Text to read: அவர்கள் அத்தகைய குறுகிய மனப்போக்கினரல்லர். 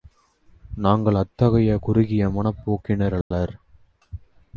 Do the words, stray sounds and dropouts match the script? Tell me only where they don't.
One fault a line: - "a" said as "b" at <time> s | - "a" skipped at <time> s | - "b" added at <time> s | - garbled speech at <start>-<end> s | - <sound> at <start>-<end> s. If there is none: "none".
- "அவர்கள்" said as "நாங்கள்" at 0.8 s
- dropout at 3.2-3.3 s